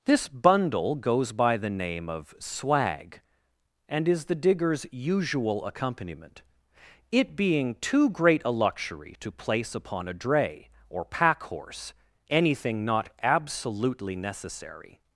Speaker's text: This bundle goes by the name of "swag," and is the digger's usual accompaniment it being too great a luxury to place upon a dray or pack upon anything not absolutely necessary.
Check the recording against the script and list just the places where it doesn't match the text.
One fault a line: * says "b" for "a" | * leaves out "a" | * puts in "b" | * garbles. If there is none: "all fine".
* says "horse" for "upon"